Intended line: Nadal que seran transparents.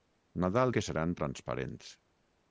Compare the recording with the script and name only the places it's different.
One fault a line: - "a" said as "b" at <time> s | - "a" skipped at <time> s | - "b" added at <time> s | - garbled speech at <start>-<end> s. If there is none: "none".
none